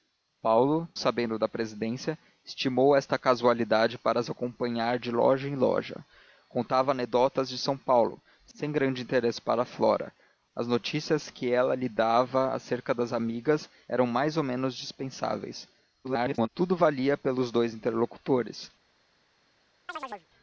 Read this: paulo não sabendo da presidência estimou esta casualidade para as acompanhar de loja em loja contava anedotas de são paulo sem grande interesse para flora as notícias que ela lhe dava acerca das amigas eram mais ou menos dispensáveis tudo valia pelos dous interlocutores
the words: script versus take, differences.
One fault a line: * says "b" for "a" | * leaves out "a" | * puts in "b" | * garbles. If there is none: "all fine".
* leaves out "não"
* garbles